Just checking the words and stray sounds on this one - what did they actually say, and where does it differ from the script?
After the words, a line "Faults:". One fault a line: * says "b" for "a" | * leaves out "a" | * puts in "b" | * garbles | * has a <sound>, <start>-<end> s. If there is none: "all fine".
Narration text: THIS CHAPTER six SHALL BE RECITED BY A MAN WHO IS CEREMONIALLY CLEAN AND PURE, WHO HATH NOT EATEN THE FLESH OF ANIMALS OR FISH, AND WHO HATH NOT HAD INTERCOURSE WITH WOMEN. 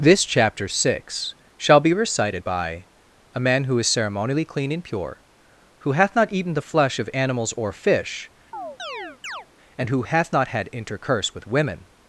THIS CHAPTER six SHALL BE RECITED BY A MAN WHO IS CEREMONIALLY CLEAN AND PURE, WHO HATH NOT EATEN THE FLESH OF ANIMALS OR FISH, AND WHO HATH NOT HAD INTERCOURSE WITH WOMEN.
Faults:
* has a chirp, 8.5-9.5 s